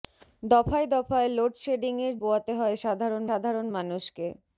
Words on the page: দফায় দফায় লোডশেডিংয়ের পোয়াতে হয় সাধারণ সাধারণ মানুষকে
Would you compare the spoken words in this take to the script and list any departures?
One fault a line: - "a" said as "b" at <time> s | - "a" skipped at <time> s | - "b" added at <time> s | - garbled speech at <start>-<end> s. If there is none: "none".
none